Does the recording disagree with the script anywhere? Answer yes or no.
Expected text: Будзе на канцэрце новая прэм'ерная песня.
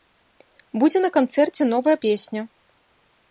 yes